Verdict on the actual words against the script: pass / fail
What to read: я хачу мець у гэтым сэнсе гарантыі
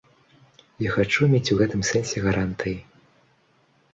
pass